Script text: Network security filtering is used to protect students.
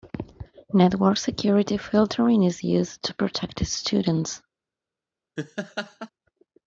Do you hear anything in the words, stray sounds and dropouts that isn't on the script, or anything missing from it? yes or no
yes